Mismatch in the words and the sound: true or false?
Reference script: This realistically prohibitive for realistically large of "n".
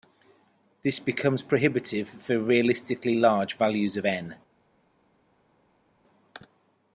true